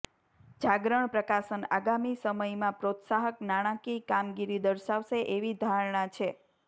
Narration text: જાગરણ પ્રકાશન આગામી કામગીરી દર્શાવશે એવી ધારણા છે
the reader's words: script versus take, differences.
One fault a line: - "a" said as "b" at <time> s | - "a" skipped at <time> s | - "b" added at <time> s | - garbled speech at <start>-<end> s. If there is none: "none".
- "સમયમાં પ્રોત્સાહક નાણાકીય" added at 2.2 s